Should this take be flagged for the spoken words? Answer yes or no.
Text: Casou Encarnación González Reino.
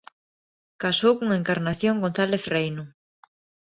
yes